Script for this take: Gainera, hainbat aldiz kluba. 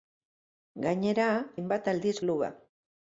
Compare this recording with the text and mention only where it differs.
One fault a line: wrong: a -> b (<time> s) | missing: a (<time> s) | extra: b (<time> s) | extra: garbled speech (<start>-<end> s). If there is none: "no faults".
no faults